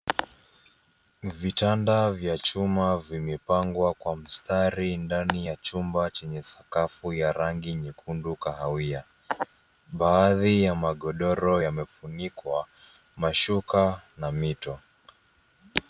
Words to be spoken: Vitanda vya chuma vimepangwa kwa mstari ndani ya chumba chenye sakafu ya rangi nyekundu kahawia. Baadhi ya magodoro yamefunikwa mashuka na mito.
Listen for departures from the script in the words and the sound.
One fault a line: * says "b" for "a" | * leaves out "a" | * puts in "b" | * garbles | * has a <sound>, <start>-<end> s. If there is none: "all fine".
all fine